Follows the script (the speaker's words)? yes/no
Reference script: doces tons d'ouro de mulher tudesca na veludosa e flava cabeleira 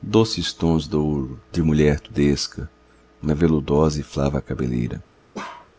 yes